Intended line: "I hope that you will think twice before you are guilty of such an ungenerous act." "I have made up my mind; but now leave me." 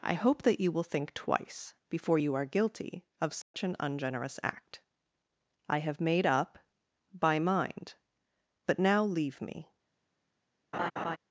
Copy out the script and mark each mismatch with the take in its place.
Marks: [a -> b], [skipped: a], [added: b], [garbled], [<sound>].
"I hope that you will think twice before you are guilty of such [dropout] an ungenerous act." "I have made up [my -> by] mind; but now leave me." [laugh]